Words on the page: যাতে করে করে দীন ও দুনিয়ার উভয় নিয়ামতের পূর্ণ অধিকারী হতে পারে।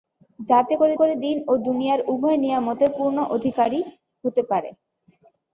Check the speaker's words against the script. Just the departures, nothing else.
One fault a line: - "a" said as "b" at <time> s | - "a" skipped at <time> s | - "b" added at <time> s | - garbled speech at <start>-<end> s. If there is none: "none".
none